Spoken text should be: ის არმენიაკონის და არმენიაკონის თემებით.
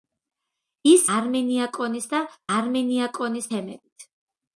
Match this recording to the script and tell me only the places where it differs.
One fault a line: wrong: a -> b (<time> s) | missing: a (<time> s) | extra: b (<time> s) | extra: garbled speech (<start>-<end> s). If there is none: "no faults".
no faults